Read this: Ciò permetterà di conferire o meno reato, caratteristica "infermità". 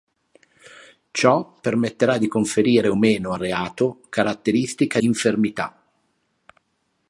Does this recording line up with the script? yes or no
yes